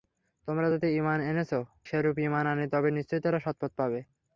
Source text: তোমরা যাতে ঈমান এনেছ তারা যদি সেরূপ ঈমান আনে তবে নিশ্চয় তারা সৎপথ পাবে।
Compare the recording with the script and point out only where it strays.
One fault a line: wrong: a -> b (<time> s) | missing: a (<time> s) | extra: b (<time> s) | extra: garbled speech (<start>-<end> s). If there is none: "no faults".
missing: তারা যদি (1.5 s)